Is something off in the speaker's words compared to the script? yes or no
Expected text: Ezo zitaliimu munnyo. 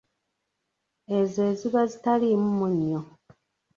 yes